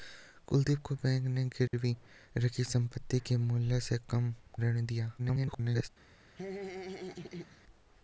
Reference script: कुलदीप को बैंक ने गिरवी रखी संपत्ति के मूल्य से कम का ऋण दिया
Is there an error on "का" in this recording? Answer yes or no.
yes